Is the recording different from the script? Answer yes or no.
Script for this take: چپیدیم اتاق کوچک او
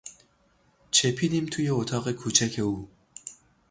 yes